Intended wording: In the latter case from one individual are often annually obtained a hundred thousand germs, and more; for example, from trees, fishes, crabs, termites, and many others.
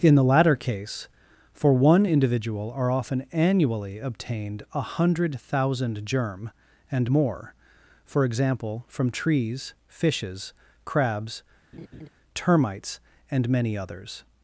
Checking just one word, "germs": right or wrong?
wrong